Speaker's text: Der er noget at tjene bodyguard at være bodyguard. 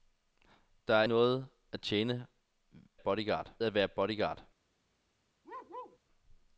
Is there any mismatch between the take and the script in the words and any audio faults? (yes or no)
yes